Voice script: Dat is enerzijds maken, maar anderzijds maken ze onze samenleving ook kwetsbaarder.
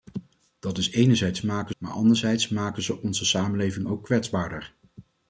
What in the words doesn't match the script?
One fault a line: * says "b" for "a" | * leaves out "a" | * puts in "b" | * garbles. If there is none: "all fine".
all fine